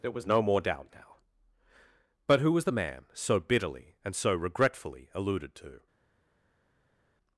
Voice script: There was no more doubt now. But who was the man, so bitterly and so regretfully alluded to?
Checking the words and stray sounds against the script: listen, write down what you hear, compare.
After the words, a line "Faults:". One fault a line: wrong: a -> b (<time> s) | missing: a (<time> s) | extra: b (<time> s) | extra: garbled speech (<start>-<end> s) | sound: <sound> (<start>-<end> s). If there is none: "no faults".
There was no more doubt now. But who was the man, so bitterly and so regretfully alluded to?
Faults:
no faults